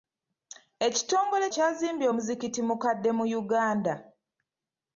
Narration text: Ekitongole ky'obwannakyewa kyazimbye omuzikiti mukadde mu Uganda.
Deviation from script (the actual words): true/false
true